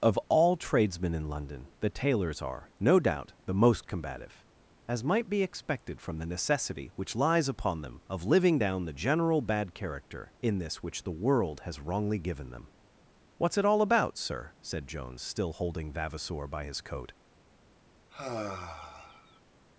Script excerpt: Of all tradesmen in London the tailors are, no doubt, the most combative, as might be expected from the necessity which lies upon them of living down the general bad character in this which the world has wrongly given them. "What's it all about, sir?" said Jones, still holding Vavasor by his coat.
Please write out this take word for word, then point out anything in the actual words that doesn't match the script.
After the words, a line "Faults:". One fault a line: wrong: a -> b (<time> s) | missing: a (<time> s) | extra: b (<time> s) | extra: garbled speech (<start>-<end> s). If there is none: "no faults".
Of all tradesmen in London the tailors are, no doubt, the most combative, as might be expected from the necessity which lies upon them of living down the general bad character in this which the world has wrongly given them. "What's it all about, sir?" said Jones, still holding Vavasor by his coat.
Faults:
no faults